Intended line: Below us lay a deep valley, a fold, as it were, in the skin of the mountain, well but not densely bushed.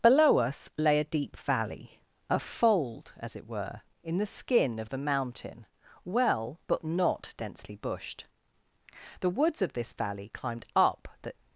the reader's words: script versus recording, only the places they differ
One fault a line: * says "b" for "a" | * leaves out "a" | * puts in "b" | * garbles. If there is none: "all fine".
* puts in "The woods of this valley climbed up the"